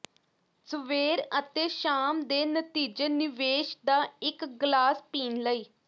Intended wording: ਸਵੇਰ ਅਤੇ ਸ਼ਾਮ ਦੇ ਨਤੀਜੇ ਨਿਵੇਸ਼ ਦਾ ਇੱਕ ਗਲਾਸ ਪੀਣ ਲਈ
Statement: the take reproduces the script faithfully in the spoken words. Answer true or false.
true